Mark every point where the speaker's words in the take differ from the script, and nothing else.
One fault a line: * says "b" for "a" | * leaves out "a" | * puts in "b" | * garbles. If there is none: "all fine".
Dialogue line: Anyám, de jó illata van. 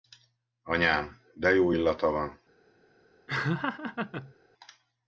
all fine